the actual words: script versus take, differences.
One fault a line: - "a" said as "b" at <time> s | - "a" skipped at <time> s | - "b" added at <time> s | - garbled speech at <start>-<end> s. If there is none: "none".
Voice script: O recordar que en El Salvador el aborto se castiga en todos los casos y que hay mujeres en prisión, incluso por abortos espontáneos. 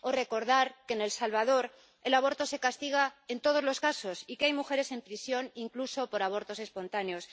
none